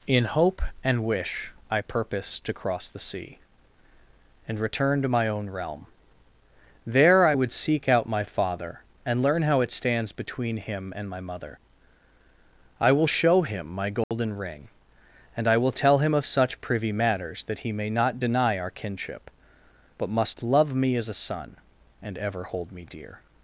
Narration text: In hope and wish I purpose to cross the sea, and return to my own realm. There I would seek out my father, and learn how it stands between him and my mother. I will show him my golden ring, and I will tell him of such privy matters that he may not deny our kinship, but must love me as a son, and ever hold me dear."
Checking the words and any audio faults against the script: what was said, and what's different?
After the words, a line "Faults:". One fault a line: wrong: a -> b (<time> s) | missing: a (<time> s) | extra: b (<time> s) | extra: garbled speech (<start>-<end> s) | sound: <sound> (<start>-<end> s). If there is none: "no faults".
In hope and wish I purpose to cross the sea, and return to my own realm. There I would seek out my father, and learn how it stands between him and my mother. I will show him my golden ring, and I will tell him of such privy matters that he may not deny our kinship, but must love me as a son, and ever hold me dear."
Faults:
sound: dropout (14.0-14.1 s)